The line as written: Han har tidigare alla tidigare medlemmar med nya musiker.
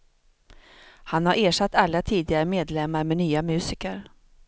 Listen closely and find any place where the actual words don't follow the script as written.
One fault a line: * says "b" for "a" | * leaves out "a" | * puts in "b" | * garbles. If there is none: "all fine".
* says "ersatt" for "tidigare"